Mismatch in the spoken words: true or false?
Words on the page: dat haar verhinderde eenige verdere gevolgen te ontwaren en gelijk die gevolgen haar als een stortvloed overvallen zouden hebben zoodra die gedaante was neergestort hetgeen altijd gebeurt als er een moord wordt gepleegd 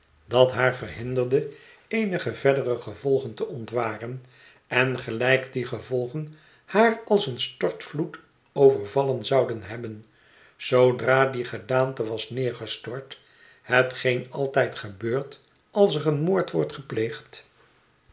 false